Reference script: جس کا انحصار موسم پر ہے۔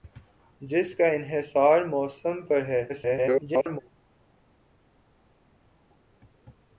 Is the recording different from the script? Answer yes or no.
yes